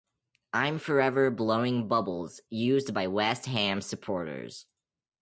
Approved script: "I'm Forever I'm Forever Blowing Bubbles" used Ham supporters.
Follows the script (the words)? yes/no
no